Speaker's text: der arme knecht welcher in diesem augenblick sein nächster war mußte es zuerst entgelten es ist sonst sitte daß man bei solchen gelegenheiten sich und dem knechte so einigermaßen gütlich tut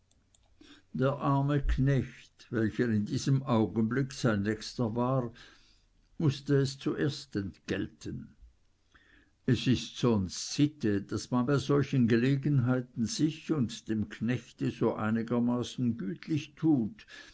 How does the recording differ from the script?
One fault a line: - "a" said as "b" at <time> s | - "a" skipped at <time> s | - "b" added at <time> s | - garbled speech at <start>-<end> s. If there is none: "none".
none